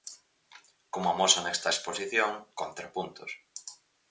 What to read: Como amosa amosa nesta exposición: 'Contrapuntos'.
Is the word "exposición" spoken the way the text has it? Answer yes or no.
yes